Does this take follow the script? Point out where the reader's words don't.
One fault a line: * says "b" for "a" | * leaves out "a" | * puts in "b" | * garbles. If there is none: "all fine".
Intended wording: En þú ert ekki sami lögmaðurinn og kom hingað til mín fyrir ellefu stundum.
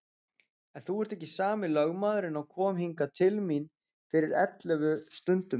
all fine